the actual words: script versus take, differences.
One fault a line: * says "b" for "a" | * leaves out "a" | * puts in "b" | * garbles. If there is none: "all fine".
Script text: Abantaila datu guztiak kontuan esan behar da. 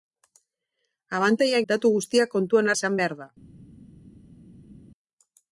all fine